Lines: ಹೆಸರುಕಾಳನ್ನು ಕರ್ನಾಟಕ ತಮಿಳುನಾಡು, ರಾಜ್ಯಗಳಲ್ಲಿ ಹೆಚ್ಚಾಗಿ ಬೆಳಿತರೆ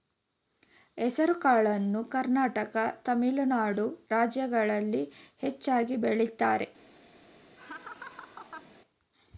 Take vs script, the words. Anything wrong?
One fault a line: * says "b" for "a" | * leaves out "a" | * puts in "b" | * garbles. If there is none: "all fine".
all fine